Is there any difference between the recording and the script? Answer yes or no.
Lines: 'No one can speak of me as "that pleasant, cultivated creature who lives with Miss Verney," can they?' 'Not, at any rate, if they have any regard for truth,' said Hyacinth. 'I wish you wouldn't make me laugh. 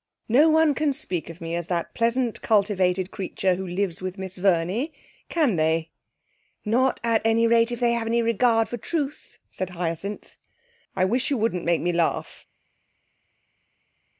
no